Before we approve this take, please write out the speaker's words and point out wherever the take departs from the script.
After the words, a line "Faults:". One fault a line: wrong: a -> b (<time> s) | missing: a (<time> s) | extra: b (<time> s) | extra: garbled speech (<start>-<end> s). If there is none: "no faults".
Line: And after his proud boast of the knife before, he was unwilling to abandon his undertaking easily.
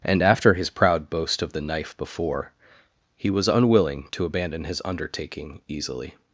And after his proud boast of the knife before, he was unwilling to abandon his undertaking easily.
Faults:
no faults